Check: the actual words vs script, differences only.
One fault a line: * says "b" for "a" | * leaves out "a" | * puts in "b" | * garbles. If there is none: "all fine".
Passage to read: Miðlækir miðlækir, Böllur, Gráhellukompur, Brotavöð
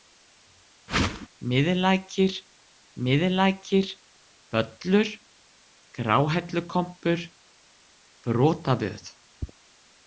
all fine